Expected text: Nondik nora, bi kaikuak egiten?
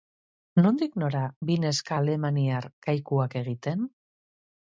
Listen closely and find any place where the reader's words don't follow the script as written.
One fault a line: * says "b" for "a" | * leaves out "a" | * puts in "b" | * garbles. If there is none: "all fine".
* puts in "neska alemaniar"